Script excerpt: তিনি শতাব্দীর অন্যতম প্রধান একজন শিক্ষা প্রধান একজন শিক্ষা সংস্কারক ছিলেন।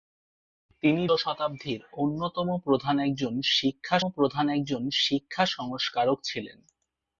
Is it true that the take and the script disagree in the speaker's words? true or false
false